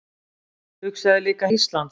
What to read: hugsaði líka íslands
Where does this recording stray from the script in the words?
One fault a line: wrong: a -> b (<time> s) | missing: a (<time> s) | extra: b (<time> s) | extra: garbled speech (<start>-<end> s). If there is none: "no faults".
no faults